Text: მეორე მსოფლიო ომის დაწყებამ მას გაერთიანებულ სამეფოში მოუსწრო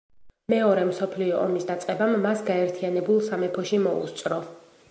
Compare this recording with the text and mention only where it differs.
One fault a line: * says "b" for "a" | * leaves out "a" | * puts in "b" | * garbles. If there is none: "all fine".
all fine